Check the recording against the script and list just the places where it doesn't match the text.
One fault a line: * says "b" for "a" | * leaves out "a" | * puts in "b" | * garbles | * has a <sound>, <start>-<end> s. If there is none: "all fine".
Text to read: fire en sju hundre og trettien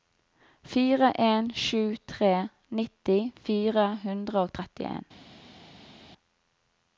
* puts in "tre nitti fire"